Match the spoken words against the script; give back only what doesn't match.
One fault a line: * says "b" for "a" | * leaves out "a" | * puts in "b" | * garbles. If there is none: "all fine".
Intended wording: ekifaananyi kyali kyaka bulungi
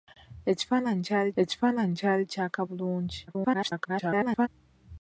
* puts in "ekifaananyi kyali"
* garbles